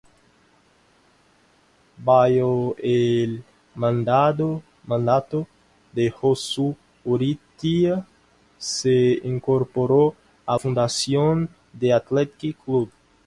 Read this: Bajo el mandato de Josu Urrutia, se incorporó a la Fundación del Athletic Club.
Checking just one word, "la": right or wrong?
wrong